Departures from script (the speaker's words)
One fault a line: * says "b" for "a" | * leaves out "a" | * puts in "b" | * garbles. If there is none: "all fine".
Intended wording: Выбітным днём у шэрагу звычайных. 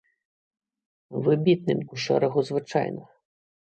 * leaves out "днём"